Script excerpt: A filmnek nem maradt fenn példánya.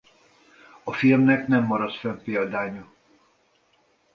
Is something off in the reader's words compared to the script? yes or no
no